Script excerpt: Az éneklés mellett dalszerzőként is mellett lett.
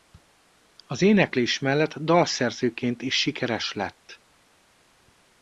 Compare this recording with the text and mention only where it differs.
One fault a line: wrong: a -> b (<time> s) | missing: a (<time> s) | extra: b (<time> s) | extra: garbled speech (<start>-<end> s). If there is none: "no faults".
wrong: mellett -> sikeres (3.1 s)